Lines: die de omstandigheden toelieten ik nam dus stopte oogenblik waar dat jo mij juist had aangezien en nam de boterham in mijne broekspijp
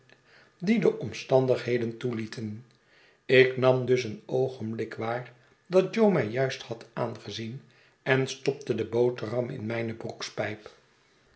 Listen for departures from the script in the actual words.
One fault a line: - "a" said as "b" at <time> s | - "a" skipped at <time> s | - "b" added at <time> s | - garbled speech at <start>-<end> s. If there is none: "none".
- "stopte" said as "een" at 4.0 s
- "nam" said as "stopte" at 8.3 s